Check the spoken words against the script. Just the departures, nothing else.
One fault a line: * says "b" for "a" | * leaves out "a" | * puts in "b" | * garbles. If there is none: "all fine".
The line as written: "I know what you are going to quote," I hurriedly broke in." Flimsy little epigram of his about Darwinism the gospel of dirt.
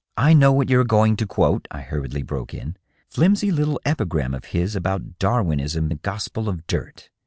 all fine